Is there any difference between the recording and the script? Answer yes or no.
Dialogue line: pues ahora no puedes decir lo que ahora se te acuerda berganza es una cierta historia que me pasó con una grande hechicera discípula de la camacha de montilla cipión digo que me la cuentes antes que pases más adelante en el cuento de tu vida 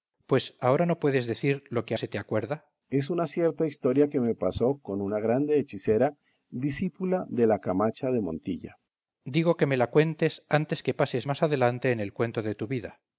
yes